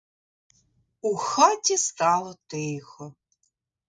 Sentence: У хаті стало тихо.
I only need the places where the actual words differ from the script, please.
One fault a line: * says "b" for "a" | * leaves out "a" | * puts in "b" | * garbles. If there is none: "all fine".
all fine